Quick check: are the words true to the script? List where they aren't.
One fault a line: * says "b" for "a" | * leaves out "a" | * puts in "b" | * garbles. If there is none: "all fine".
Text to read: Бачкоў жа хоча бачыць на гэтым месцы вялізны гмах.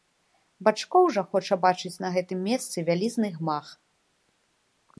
all fine